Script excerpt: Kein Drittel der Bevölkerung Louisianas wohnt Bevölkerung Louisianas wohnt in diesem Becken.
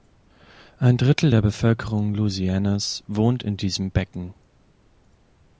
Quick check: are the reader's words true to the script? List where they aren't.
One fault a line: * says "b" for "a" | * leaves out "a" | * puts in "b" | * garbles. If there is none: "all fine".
* says "Ein" for "Kein"
* leaves out "Bevölkerung Louisianas wohnt"